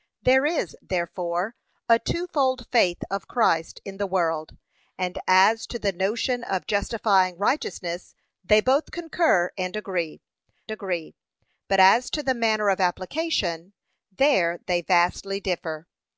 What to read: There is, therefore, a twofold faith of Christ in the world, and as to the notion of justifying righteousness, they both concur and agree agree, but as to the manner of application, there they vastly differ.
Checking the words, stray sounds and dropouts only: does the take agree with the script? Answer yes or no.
yes